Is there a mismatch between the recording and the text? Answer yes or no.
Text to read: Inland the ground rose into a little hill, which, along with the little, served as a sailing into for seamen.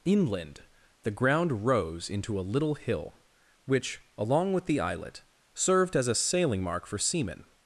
yes